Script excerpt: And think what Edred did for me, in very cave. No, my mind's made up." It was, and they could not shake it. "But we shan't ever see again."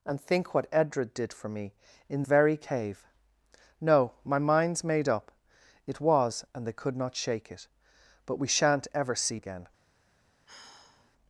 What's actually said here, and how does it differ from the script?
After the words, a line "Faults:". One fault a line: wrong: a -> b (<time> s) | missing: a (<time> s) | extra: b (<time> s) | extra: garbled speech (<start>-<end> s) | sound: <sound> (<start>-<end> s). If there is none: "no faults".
And think what Edred did for me, in very cave. No, my mind's made up." It was, and they could not shake it. "But we shan't ever see again."
Faults:
sound: sigh (10.5-11.1 s)